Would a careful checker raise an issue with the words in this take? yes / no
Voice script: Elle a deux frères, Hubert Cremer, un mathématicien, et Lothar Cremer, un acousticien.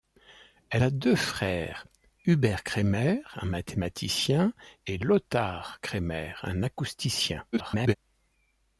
yes